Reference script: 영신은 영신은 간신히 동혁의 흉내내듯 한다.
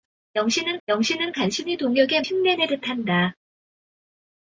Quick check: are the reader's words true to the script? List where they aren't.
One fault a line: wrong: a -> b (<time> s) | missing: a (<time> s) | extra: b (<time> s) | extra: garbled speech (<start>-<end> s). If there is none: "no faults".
no faults